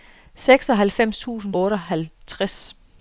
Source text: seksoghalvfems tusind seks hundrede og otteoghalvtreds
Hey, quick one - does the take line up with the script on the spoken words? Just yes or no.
no